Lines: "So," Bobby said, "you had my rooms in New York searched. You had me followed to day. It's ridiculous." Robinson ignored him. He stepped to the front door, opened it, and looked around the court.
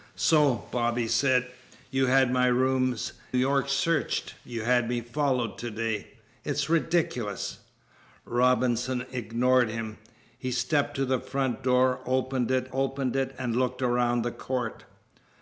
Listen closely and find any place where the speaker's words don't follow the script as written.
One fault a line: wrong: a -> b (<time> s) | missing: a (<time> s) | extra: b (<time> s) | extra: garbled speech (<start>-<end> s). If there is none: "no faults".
missing: in New (3.1 s)
extra: opened it (12.7 s)